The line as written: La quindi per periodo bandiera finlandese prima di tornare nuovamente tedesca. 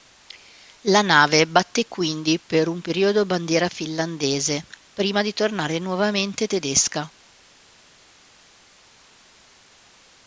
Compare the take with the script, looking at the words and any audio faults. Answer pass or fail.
fail